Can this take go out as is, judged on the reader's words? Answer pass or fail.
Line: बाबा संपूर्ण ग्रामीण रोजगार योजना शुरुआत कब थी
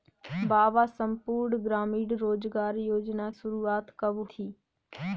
pass